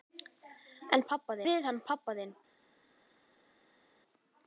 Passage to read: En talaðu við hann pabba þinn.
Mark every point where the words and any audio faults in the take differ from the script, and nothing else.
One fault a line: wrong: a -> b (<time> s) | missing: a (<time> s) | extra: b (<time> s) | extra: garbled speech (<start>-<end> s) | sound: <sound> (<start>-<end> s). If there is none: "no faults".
wrong: talaðu -> pabba (1.1 s)